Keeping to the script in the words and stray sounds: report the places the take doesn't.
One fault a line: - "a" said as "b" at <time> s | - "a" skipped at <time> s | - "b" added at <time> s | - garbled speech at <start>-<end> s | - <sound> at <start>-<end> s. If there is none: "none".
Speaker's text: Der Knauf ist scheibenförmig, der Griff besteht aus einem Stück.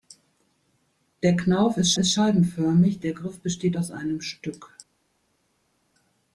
- "ist" added at 2.0 s